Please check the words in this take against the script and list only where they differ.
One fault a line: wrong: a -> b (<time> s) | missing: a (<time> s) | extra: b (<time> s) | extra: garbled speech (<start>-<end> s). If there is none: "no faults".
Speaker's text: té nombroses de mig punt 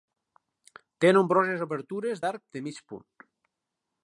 extra: obertures d'arc (1.7 s)